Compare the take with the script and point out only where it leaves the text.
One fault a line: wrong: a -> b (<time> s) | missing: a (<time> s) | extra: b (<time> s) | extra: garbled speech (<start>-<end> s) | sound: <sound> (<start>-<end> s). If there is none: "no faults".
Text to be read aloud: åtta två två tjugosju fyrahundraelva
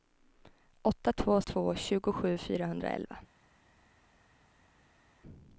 no faults